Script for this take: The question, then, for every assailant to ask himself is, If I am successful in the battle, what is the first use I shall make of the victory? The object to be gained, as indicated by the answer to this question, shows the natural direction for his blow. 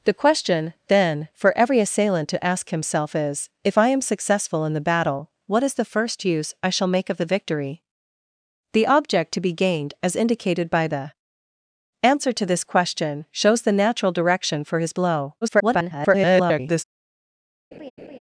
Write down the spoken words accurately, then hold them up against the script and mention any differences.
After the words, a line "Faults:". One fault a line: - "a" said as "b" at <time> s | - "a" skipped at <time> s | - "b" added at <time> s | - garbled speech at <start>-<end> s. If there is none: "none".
The question, then, for every assailant to ask himself is, If I am successful in the battle, what is the first use I shall make of the victory? The object to be gained, as indicated by the answer to this question, shows the natural direction for his blow. [garbled]
Faults:
- garbled speech at 15.4-16.8 s